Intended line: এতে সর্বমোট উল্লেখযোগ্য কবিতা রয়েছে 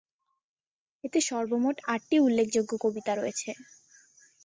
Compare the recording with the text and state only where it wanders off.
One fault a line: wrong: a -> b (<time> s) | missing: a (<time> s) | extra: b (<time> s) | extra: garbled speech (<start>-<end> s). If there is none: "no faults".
extra: আটটি (1.9 s)